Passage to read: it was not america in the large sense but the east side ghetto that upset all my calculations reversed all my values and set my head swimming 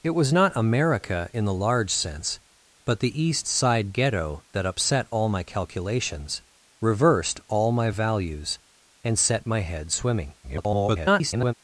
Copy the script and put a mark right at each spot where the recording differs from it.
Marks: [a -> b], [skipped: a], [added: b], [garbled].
it was not america in the large sense but the east side ghetto that upset all my calculations reversed all my values and set my head swimming [garbled]